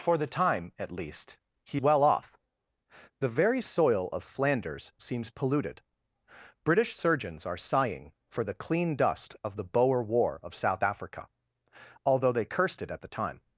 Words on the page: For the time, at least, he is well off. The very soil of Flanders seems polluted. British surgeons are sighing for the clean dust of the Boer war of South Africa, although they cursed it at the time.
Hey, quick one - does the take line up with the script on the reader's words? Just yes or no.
no